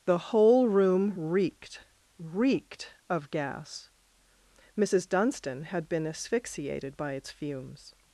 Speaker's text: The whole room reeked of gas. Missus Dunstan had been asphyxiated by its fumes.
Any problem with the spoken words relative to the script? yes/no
yes